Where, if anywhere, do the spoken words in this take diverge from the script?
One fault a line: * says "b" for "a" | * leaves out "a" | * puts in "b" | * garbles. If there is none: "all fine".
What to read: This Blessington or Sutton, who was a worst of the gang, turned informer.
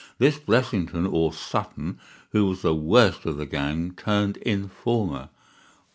* says "the" for "a"